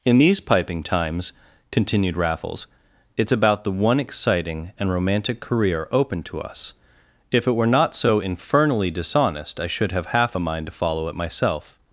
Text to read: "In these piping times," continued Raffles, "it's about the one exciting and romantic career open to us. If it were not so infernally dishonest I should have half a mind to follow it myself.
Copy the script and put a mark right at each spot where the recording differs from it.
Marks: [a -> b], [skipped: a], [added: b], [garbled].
"In these piping times," continued Raffles, "it's about the one exciting and romantic career open to us. If it were not so infernally dishonest I should have half a mind to follow it myself.